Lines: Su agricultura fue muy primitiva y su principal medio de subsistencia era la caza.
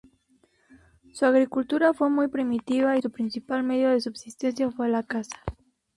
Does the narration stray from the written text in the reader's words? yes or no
yes